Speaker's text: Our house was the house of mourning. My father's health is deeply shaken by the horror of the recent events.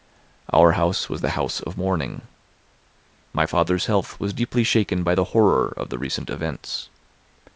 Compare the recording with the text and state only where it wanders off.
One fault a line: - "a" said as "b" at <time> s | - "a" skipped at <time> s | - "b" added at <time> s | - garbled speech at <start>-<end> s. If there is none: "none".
- "is" said as "was" at 4.2 s